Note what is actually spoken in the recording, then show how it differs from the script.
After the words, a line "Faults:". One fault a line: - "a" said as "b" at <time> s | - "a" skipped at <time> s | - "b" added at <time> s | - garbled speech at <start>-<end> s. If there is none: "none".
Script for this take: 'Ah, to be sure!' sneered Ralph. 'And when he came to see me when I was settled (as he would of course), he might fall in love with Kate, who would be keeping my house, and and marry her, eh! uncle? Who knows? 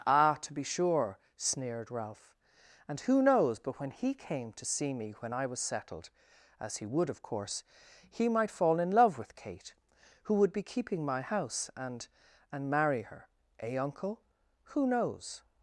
'Ah, to be sure!' sneered Ralph. 'And who knows, but when he came to see me when I was settled (as he would of course), he might fall in love with Kate, who would be keeping my house, and and marry her, eh! uncle? Who knows?
Faults:
- "who knows but" added at 3.0 s